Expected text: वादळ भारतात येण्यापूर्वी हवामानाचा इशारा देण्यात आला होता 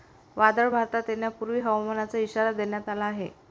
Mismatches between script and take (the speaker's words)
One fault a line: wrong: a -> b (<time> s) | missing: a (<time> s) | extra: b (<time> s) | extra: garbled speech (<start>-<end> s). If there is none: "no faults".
wrong: होता -> आहे (3.1 s)